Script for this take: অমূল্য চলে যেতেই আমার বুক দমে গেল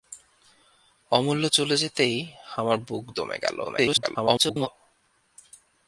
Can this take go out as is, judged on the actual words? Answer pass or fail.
fail